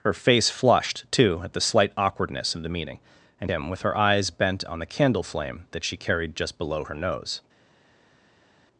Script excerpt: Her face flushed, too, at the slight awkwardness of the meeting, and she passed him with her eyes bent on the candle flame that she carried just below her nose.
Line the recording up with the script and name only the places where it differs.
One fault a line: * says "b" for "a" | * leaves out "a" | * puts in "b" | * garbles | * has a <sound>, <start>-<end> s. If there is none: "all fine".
* leaves out "she passed"